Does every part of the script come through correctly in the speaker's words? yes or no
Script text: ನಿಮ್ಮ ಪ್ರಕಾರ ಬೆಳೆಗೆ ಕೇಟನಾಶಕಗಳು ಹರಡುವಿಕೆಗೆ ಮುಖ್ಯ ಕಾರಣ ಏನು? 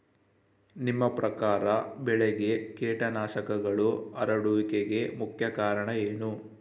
yes